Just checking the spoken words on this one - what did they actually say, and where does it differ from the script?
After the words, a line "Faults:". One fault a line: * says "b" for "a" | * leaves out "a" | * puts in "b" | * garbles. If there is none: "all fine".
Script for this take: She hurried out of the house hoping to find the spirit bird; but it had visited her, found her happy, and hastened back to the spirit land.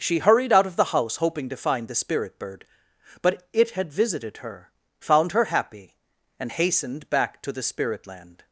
She hurried out of the house hoping to find the spirit bird; but it had visited her, found her happy, and hastened back to the spirit land.
Faults:
all fine